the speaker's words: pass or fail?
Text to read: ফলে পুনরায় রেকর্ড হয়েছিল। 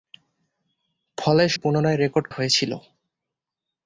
pass